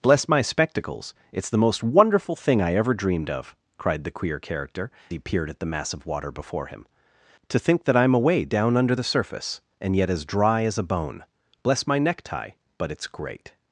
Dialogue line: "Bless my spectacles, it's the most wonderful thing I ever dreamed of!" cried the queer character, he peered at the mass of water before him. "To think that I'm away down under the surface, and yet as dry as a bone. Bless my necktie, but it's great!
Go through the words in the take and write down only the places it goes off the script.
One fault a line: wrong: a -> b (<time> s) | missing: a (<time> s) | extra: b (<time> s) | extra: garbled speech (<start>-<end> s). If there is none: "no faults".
no faults